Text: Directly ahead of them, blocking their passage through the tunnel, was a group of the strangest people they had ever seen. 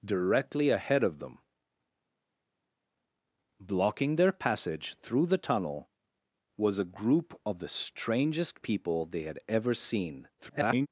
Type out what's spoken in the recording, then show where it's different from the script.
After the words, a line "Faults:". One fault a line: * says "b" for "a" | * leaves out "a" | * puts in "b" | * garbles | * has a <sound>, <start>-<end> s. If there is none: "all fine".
Directly ahead of them, blocking their passage through the tunnel, was a group of the strangest people they had ever seen. [garbled]
Faults:
* garbles